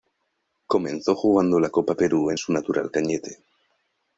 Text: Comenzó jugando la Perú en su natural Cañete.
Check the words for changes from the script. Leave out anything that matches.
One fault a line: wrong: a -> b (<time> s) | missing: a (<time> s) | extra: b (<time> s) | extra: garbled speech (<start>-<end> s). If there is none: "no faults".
extra: Copa (1.7 s)